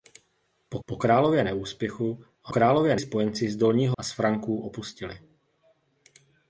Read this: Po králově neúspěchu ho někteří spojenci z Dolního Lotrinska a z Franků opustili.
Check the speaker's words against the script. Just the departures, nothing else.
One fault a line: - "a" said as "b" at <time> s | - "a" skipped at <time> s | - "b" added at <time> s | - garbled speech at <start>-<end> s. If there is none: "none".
- "po" added at 0.9 s
- "někteří" said as "králově" at 2.5 s
- "Lotrinska" skipped at 4.0 s